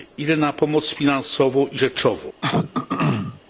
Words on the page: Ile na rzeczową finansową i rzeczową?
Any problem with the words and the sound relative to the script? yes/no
yes